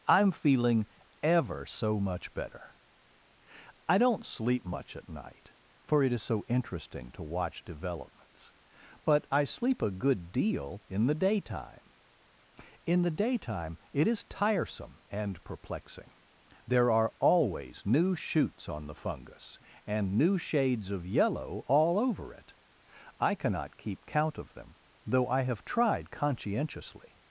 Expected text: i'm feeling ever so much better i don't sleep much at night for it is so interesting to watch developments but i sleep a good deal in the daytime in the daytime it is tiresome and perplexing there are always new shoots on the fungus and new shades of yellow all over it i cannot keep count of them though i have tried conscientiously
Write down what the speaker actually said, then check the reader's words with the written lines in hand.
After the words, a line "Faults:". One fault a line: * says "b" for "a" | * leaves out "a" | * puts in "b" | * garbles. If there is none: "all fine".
i'm feeling ever so much better i don't sleep much at night for it is so interesting to watch developments but i sleep a good deal in the daytime in the daytime it is tiresome and perplexing there are always new shoots on the fungus and new shades of yellow all over it i cannot keep count of them though i have tried conscientiously
Faults:
all fine